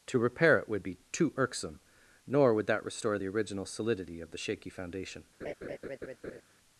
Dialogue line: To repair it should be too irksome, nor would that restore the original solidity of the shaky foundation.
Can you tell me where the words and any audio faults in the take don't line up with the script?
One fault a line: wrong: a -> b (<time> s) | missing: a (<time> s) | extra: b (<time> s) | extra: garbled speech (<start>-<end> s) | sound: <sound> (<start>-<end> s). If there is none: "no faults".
wrong: should -> would (0.7 s)
sound: laugh (5.4-6.4 s)